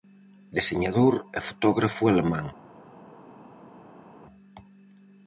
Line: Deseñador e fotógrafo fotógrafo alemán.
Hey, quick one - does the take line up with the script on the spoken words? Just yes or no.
no